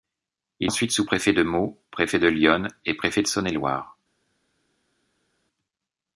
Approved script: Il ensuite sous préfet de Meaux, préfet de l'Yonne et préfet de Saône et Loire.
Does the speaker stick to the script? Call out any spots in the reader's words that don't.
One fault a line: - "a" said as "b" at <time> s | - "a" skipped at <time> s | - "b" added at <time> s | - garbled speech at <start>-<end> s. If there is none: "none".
none